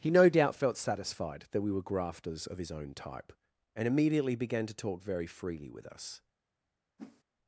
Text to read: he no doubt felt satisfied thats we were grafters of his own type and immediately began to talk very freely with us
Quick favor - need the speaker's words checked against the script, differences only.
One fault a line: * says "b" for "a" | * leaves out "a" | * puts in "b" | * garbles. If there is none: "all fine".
* says "that" for "thats"